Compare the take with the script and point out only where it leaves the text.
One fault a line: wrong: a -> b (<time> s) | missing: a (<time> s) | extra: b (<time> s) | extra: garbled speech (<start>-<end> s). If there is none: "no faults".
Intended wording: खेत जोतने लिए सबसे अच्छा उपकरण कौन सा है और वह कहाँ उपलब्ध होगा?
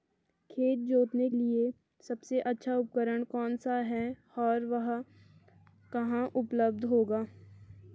no faults